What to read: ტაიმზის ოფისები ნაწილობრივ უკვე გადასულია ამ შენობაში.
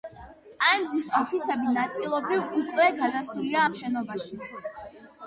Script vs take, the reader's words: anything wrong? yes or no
no